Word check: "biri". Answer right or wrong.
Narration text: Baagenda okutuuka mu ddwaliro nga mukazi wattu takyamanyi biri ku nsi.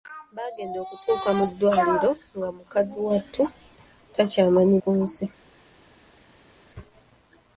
wrong